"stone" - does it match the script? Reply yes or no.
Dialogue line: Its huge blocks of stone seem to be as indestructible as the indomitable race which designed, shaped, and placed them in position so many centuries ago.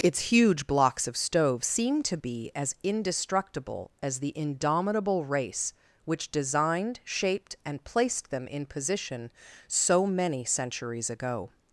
no